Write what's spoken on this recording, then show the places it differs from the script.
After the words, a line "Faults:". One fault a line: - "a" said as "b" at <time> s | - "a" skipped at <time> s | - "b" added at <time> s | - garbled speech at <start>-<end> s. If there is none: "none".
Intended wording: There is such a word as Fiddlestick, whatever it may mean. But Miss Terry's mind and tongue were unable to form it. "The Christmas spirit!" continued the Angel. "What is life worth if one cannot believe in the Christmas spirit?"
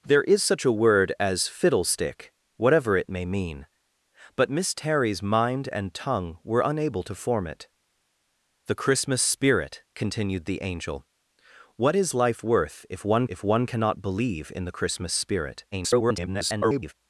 There is such a word as Fiddlestick, whatever it may mean. But Miss Terry's mind and tongue were unable to form it. "The Christmas spirit!" continued the Angel. "What is life worth if one if one cannot believe in the Christmas spirit?" [garbled]
Faults:
- "if one" added at 13.3 s
- garbled speech at 15.7-16.9 s